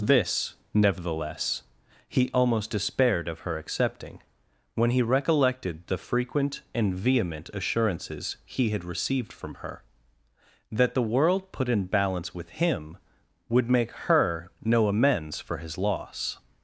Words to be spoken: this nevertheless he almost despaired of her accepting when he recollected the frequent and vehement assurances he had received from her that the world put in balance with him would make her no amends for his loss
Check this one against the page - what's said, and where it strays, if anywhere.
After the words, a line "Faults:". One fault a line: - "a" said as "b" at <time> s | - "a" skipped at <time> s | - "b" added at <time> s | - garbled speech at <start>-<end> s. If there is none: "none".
this nevertheless he almost despaired of her accepting when he recollected the frequent and vehement assurances he had received from her that the world put in balance with him would make her no amends for his loss
Faults:
none